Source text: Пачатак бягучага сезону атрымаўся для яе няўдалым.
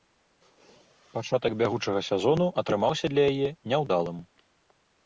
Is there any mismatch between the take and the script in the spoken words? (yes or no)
no